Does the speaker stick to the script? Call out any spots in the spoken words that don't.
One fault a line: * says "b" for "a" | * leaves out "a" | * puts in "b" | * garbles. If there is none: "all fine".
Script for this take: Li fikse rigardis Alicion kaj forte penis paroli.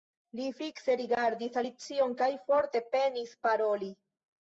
all fine